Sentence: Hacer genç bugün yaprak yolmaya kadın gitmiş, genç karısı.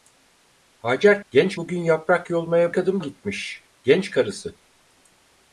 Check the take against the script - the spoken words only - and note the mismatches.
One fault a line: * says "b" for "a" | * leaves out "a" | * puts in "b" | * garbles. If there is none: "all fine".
all fine